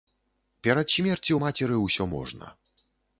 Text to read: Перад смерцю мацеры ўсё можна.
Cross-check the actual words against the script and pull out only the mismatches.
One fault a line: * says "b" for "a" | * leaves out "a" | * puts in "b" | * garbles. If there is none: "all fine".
all fine